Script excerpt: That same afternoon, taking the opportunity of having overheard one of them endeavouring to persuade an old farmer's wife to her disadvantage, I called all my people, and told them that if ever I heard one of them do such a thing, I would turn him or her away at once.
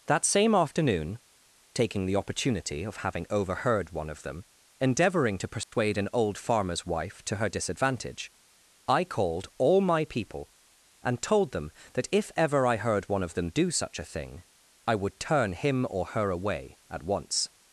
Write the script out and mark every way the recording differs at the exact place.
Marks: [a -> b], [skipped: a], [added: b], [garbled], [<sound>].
That same afternoon, taking the opportunity of having overheard one of them endeavouring to persuade [dropout] an old farmer's wife to her disadvantage, I called all my people, and told them that if ever I heard one of them do such a thing, I would turn him or her away at once.